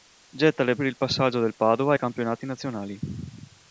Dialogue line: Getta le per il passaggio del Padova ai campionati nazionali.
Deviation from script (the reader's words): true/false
false